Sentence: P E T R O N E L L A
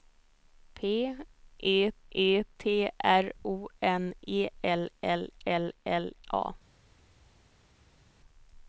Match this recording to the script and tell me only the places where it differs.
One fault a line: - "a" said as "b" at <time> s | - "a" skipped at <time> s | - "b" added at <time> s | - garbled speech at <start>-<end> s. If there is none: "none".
- "E" added at 2.1 s
- "L L" added at 5.5 s